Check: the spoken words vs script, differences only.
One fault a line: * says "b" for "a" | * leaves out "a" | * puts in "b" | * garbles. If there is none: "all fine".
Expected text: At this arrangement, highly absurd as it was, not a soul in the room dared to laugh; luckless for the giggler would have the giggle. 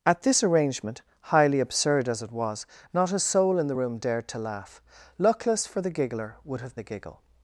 all fine